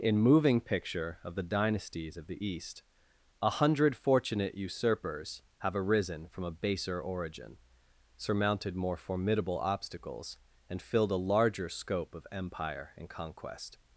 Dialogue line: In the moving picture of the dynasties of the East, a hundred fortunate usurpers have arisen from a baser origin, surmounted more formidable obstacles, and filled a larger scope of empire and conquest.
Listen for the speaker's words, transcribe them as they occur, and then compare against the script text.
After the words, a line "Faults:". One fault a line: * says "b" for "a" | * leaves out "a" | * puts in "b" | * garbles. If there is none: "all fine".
In moving picture of the dynasties of the East, a hundred fortunate usurpers have arisen from a baser origin, surmounted more formidable obstacles, and filled a larger scope of empire and conquest.
Faults:
* leaves out "the"